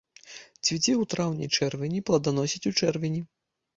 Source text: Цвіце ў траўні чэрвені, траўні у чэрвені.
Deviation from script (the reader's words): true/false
true